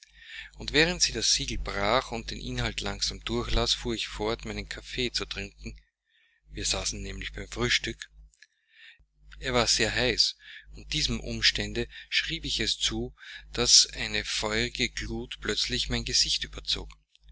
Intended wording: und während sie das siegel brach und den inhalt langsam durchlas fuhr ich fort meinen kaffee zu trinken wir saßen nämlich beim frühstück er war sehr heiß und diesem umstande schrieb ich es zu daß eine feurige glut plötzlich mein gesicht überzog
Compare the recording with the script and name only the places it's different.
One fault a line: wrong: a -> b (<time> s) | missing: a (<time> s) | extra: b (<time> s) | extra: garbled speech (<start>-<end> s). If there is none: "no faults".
no faults